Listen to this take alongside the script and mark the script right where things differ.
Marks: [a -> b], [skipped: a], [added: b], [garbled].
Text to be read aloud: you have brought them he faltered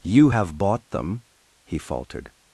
you have [brought -> bought] them he faltered